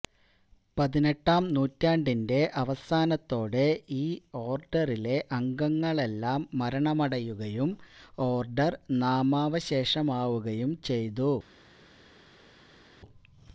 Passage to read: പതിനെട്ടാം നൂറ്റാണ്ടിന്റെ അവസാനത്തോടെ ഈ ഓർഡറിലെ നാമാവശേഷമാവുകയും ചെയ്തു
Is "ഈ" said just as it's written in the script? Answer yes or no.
yes